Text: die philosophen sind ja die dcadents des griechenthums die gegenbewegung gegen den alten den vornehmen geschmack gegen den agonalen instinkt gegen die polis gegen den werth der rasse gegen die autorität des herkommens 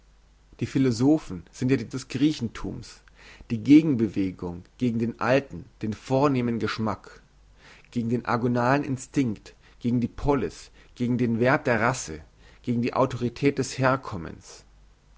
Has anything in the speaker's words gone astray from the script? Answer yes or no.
yes